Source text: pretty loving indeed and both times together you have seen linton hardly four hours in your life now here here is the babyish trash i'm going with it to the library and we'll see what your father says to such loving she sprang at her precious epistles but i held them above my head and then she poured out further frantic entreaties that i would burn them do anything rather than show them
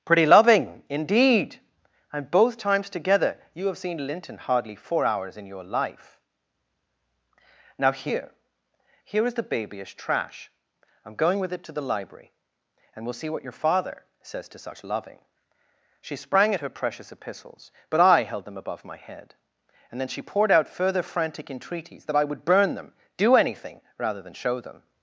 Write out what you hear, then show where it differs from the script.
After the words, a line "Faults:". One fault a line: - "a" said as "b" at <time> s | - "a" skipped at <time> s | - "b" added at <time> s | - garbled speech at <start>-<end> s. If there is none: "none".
pretty loving indeed and both times together you have seen linton hardly four hours in your life now here here is the babyish trash i'm going with it to the library and we'll see what your father says to such loving she sprang at her precious epistles but i held them above my head and then she poured out further frantic entreaties that i would burn them do anything rather than show them
Faults:
none